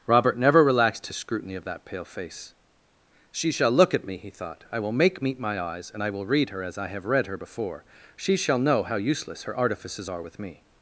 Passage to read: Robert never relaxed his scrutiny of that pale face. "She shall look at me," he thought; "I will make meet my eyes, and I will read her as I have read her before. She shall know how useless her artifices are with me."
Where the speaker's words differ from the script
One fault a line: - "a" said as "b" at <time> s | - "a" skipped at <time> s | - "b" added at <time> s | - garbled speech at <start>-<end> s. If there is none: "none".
none